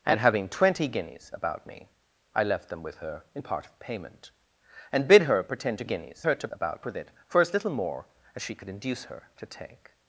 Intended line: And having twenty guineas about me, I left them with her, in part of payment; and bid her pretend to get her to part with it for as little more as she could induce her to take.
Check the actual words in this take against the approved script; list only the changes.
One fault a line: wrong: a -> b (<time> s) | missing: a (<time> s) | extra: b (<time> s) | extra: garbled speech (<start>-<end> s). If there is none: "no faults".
wrong: get -> guineas (5.8 s)
wrong: part -> about (6.5 s)